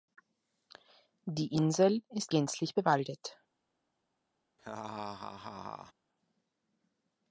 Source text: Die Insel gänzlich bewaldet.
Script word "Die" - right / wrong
right